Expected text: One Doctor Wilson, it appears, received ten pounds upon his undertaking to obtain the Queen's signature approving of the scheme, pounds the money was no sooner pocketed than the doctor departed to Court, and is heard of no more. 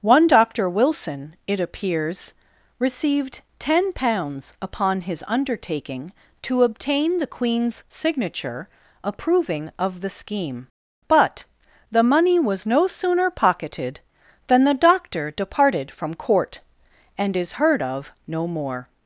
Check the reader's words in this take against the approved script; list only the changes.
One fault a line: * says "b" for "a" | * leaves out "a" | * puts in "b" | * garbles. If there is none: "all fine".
* says "but" for "pounds"
* says "from" for "to"